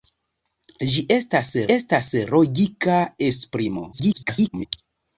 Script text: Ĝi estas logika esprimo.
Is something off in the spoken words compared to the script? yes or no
yes